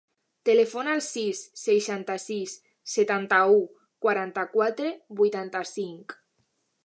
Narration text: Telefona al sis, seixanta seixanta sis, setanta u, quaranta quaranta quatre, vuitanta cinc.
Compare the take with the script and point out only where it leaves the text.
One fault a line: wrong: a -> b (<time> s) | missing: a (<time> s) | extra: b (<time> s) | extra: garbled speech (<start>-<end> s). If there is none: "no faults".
missing: seixanta (2.1 s)
missing: quaranta (4.5 s)